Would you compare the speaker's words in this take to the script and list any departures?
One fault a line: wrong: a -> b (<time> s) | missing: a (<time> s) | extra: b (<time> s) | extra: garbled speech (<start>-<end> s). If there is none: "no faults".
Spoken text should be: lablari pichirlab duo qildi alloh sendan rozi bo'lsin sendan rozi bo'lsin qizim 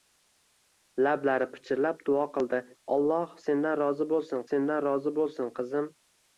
no faults